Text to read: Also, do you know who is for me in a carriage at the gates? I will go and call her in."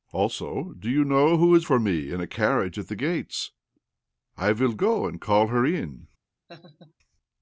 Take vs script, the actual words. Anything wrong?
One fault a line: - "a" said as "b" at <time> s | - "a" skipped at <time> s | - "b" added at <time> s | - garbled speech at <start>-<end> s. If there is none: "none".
none